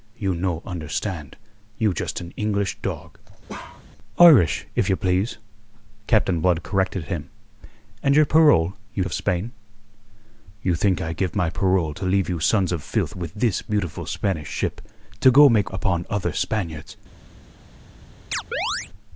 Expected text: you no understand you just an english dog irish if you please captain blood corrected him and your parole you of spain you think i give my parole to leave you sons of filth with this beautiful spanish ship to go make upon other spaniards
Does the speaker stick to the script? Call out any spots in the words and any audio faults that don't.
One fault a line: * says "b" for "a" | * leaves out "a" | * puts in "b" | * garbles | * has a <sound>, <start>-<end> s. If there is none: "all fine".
* has a bark, 3.5-3.9 s
* has a chirp, 18.3-18.9 s